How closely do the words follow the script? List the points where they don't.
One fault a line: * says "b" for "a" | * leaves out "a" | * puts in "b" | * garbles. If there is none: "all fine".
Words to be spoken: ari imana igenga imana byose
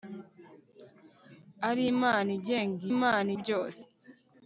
all fine